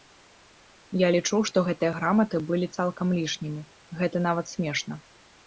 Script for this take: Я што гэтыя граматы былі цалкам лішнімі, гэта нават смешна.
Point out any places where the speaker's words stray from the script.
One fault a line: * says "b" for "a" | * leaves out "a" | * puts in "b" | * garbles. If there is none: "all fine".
* puts in "лічу"